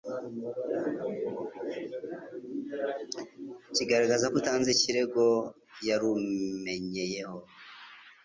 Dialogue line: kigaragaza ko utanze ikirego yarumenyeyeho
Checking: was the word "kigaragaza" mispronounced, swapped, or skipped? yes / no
no